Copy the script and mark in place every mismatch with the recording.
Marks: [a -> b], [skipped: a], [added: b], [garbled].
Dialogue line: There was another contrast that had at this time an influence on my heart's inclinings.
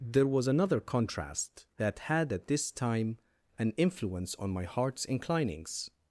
There was another contrast that had at this time an influence on my heart's inclinings.